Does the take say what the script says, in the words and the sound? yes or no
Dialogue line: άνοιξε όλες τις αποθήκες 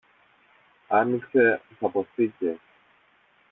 no